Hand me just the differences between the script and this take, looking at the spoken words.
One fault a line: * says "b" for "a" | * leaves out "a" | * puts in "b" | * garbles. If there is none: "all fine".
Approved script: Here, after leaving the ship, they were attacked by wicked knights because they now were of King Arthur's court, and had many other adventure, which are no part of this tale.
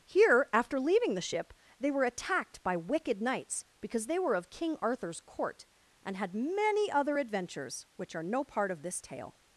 * leaves out "now"
* says "adventures" for "adventure"